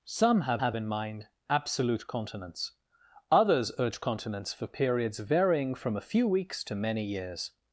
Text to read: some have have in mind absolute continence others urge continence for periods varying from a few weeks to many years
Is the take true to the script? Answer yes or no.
yes